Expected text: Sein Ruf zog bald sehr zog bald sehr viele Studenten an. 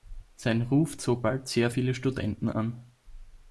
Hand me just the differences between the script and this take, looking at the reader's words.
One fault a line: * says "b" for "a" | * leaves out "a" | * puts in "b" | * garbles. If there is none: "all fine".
* leaves out "zog bald sehr"